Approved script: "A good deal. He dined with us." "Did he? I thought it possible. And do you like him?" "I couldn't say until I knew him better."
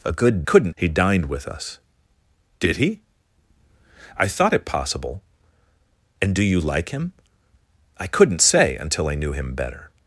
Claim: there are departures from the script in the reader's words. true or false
true